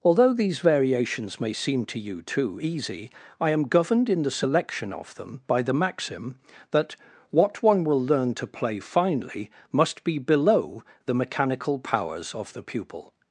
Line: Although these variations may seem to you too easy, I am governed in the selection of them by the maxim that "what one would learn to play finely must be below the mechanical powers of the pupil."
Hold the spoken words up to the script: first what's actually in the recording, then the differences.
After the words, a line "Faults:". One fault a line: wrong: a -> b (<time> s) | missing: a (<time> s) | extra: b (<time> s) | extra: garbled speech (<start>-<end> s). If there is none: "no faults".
Although these variations may seem to you too easy, I am governed in the selection of them by the maxim that "what one will learn to play finely must be below the mechanical powers of the pupil."
Faults:
wrong: would -> will (7.8 s)